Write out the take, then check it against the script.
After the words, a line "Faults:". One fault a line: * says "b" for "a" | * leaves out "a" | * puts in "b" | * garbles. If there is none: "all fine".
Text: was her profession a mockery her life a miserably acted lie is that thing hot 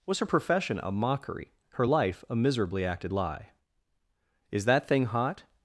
was her profession a mockery her life a miserably acted lie is that thing hot
Faults:
all fine